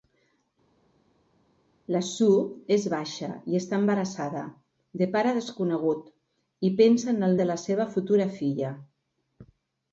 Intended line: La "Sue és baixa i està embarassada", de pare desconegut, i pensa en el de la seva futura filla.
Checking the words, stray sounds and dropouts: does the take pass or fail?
pass